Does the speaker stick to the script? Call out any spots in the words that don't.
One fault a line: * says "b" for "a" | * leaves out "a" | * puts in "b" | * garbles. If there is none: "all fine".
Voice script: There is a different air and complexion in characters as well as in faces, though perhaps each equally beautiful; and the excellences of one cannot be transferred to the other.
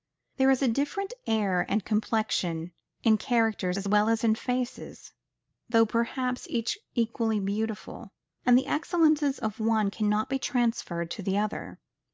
all fine